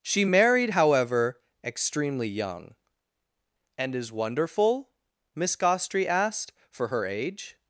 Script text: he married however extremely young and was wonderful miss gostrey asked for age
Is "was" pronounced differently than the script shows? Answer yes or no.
yes